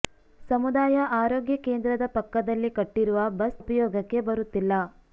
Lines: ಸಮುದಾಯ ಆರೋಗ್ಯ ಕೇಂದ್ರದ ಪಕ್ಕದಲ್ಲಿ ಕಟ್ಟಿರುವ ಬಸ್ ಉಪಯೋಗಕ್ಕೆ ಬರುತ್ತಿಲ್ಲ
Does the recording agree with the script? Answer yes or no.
yes